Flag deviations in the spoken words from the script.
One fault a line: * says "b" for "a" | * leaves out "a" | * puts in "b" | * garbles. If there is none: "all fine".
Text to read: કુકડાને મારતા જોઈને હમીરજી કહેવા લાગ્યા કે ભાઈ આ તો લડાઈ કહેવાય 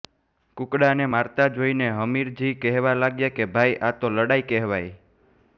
all fine